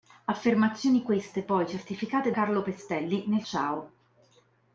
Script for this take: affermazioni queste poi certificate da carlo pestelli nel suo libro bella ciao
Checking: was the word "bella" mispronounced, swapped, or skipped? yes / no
yes